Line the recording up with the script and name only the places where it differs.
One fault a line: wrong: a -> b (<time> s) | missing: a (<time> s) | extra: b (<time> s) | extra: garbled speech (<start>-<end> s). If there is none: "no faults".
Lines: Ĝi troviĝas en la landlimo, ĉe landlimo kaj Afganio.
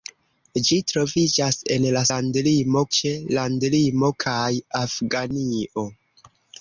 no faults